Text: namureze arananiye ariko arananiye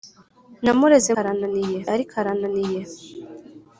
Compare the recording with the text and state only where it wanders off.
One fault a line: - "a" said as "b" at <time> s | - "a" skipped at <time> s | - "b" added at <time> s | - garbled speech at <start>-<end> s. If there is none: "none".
none